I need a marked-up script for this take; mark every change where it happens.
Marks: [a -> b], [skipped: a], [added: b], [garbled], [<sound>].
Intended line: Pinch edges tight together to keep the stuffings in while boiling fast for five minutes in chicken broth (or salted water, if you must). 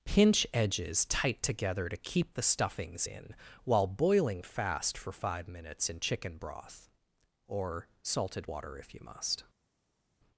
Pinch edges tight together to keep the stuffings in while boiling fast for five minutes in chicken broth (or salted water, if you must).